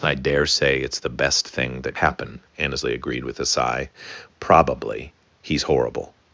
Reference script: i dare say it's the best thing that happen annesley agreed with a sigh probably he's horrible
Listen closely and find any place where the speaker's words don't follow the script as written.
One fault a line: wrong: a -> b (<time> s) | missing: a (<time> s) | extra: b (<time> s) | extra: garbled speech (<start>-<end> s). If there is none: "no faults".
no faults